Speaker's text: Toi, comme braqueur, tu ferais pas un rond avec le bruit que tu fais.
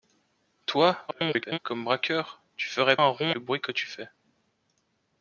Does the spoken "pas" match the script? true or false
false